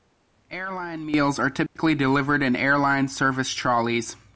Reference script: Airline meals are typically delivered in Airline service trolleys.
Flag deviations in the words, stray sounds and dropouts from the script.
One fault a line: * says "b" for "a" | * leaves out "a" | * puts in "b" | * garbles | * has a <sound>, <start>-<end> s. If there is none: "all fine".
* has a dropout, 1.7-1.8 s